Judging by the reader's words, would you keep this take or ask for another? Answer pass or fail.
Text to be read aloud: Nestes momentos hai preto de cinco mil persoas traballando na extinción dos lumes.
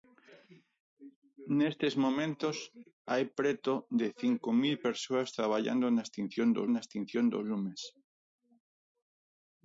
fail